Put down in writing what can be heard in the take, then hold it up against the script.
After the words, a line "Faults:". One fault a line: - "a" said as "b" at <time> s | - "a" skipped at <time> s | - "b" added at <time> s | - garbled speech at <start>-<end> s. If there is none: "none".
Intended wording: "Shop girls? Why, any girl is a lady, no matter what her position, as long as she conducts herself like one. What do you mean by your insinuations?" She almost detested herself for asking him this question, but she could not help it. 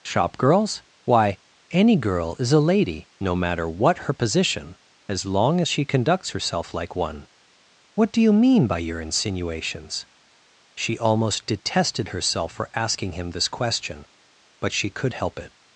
"Shop girls? Why, any girl is a lady, no matter what her position, as long as she conducts herself like one. What do you mean by your insinuations?" She almost detested herself for asking him this question, but she could help it.
Faults:
- "not" skipped at 15.1 s